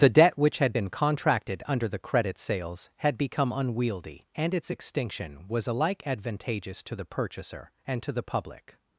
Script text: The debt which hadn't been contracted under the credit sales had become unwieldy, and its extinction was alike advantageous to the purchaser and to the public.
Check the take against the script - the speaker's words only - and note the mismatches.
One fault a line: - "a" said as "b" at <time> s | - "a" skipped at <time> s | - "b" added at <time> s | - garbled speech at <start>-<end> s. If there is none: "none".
- "hadn't" said as "had" at 0.6 s